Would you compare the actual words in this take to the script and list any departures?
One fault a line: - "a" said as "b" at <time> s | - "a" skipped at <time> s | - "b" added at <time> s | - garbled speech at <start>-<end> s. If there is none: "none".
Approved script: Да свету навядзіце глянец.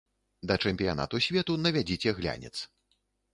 - "чэмпіянату" added at 0.7 s